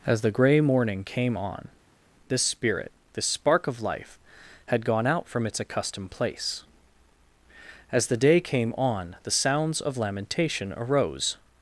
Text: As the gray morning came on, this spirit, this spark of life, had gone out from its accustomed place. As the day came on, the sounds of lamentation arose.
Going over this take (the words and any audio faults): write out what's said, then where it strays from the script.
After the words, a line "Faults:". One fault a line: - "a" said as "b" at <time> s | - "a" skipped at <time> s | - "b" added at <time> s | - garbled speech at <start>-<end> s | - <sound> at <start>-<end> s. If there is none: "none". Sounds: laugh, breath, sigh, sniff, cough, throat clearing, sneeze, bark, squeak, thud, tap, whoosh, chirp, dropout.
As the gray morning came on, this spirit, this spark of life, had gone out from its accustomed place. As the day came on, the sounds of lamentation arose.
Faults:
none